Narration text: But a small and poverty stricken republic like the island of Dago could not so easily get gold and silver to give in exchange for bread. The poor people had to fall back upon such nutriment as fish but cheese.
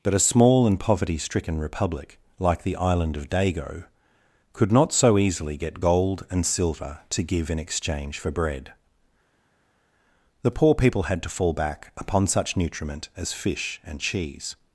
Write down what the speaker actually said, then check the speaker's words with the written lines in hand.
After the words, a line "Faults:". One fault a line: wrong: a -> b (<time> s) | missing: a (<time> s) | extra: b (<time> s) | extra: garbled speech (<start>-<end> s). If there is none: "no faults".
But a small and poverty stricken republic like the island of Dago could not so easily get gold and silver to give in exchange for bread. The poor people had to fall back upon such nutriment as fish and cheese.
Faults:
wrong: but -> and (13.8 s)